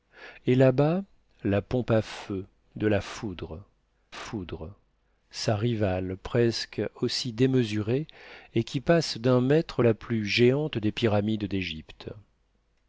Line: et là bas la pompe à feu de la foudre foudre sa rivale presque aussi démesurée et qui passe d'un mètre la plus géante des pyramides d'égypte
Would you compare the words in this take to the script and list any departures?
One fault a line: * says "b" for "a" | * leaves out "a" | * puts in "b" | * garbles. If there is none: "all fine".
all fine